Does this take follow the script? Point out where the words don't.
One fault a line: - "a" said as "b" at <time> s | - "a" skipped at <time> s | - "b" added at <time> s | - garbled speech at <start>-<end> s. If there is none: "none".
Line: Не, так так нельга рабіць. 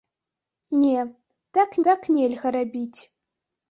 none